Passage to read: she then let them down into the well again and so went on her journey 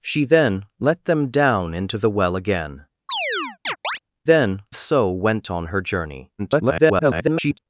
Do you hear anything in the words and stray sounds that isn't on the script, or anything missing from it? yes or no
yes